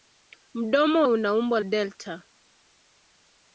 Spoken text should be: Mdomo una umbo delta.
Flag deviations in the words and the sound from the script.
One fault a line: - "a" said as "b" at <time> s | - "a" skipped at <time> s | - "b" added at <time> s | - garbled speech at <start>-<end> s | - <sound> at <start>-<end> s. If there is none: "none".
none